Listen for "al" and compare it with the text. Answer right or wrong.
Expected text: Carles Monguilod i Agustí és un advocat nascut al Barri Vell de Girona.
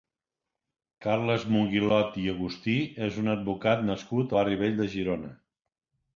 wrong